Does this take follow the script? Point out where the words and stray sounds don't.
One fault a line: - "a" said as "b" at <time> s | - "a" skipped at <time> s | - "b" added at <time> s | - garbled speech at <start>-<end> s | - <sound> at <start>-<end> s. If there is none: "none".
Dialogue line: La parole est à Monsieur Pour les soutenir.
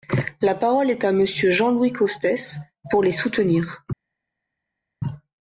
- "Jean Louis Costes" added at 1.5 s